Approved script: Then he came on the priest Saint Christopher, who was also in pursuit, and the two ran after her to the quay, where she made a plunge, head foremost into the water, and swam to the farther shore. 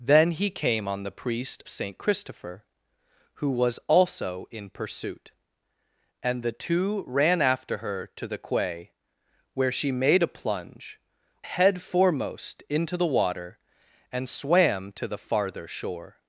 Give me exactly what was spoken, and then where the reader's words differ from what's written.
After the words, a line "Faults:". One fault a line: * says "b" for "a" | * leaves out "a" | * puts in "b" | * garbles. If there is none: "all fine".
Then he came on the priest Saint Christopher, who was also in pursuit, and the two ran after her to the quay, where she made a plunge, head foremost into the water, and swam to the farther shore.
Faults:
all fine